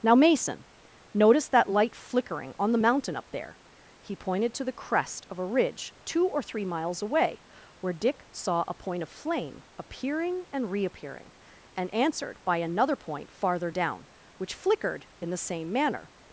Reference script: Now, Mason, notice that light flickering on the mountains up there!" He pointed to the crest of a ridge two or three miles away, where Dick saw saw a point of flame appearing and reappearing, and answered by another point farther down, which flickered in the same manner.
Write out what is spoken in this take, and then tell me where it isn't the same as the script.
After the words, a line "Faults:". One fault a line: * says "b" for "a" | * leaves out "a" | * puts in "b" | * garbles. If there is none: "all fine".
Now, Mason, notice that light flickering on the mountain up there!" He pointed to the crest of a ridge two or three miles away, where Dick saw a point of flame appearing and reappearing, and answered by another point farther down, which flickered in the same manner.
Faults:
* says "mountain" for "mountains"
* leaves out "saw"